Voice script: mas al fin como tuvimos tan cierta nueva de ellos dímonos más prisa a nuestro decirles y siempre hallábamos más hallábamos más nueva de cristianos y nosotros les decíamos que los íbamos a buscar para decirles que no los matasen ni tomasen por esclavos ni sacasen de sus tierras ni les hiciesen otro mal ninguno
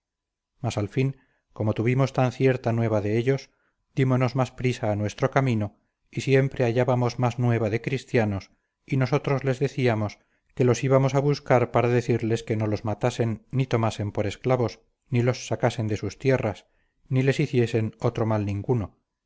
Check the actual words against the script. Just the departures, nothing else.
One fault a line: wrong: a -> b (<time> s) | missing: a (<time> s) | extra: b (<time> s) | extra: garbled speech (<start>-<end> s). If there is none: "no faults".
wrong: decirles -> camino (5.3 s)
missing: hallábamos más (7.4 s)
extra: los (15.2 s)